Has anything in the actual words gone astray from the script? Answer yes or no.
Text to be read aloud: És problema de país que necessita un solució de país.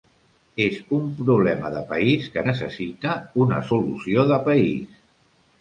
yes